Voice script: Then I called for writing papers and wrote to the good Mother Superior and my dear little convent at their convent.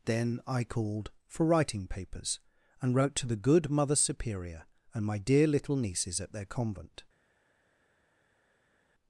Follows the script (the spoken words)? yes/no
no